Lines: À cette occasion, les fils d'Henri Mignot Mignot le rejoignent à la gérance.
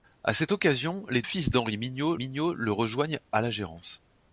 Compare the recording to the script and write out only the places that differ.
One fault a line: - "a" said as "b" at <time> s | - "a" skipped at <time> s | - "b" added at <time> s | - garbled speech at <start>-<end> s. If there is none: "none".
none